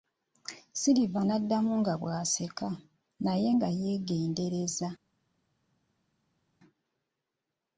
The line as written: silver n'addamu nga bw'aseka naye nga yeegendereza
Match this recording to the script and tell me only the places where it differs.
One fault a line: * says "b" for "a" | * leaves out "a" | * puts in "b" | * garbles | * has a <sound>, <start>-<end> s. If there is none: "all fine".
all fine